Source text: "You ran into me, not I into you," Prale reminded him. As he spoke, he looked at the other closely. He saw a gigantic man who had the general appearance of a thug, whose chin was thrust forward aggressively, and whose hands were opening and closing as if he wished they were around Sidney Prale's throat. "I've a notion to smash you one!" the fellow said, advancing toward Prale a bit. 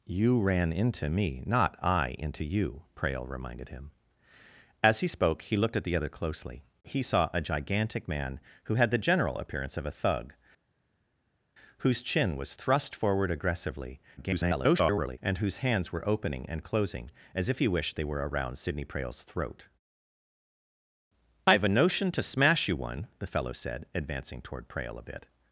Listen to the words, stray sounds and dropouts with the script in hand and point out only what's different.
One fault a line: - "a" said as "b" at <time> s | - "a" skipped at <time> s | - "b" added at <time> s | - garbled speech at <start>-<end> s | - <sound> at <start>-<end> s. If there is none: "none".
- garbled speech at 14.2-15.2 s